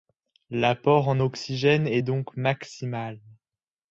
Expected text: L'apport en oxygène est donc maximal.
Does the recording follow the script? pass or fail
pass